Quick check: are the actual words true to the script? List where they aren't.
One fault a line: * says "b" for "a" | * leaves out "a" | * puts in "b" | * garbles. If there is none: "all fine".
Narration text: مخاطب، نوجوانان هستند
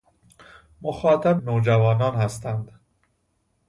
all fine